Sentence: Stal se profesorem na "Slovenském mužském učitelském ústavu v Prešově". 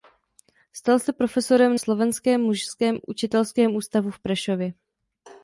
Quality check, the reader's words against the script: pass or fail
fail